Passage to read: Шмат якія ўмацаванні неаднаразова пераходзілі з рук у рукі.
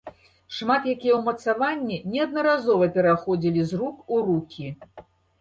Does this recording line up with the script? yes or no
yes